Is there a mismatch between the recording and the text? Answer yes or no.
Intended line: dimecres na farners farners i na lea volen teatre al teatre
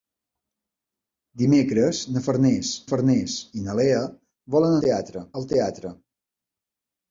no